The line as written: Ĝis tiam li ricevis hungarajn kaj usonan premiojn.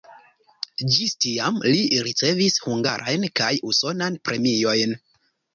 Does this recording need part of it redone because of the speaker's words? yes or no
no